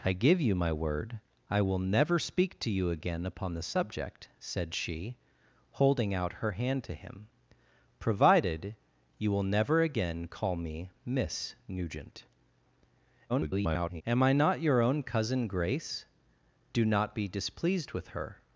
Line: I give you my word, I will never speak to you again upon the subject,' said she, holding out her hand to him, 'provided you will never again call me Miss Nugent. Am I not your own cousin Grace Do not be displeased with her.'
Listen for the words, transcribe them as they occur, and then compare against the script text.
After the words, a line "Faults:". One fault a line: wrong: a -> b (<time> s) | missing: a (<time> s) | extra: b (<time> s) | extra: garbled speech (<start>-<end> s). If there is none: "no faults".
I give you my word, I will never speak to you again upon the subject,' said she, holding out her hand to him, 'provided you will never again call me Miss Nugent. [garbled] Am I not your own cousin Grace Do not be displeased with her.'
Faults:
extra: garbled speech (13.3-14.0 s)